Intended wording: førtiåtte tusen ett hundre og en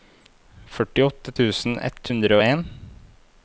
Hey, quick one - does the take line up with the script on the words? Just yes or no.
yes